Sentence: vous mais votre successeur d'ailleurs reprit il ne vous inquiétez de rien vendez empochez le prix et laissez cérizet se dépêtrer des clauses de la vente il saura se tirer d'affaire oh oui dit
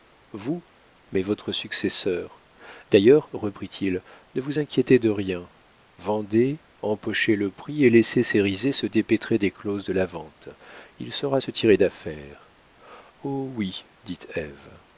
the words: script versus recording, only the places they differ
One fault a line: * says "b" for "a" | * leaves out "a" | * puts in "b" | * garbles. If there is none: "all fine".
all fine